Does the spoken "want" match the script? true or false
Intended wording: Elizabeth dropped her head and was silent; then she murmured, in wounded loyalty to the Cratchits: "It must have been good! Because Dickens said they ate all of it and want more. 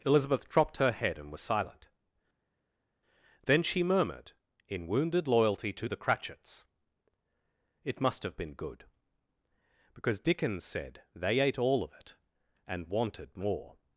false